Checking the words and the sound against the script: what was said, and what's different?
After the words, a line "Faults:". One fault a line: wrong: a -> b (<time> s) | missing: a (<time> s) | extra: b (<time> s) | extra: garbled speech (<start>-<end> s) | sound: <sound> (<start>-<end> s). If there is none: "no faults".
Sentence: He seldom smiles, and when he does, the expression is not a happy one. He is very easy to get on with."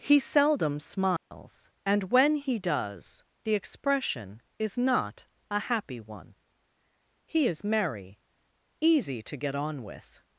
He seldom smiles, and when he does, the expression is not a happy one. He is merry easy to get on with."
Faults:
sound: dropout (1.2-1.3 s)
wrong: very -> merry (7.7 s)